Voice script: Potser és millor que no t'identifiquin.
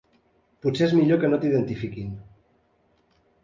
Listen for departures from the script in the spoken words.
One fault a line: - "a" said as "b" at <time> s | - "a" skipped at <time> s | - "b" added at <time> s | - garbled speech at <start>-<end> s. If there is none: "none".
none